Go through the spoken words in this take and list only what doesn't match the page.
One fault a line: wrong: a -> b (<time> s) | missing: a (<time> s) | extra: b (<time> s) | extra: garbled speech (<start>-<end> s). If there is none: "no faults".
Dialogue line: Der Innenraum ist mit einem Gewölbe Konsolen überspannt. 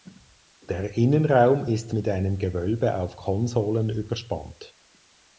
extra: auf (3.0 s)